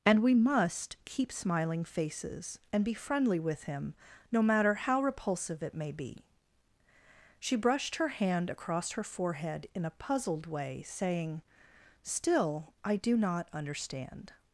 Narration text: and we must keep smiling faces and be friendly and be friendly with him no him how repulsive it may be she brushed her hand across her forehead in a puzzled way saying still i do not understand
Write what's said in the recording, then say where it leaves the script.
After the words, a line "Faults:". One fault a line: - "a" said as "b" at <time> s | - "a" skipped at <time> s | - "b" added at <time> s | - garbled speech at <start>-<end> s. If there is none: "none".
and we must keep smiling faces and be friendly with him no matter how repulsive it may be she brushed her hand across her forehead in a puzzled way saying still i do not understand
Faults:
- "and be friendly" skipped at 3.4 s
- "him" said as "matter" at 4.4 s